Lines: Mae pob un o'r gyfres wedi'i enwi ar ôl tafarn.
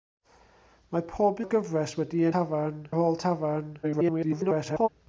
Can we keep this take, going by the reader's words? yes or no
no